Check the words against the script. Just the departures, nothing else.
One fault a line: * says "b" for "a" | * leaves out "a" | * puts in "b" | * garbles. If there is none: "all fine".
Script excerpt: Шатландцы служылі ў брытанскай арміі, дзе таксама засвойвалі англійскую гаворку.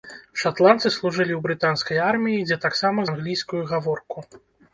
* leaves out "засвойвалі"